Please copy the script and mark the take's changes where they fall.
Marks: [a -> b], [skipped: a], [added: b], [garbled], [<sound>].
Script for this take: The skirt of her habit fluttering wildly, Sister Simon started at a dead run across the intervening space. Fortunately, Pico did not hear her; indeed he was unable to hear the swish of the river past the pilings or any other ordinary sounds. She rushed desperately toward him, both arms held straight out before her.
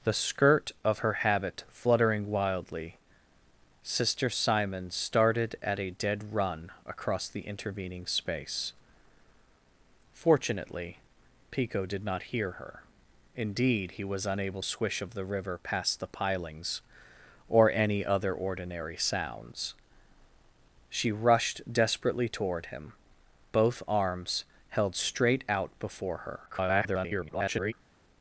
The skirt of her habit fluttering wildly, Sister Simon started at a dead run across the intervening space. Fortunately, Pico did not hear her; indeed he was unable [skipped: to hear the] swish of the river past the pilings or any other ordinary sounds. She rushed desperately toward him, both arms held straight out before her. [garbled]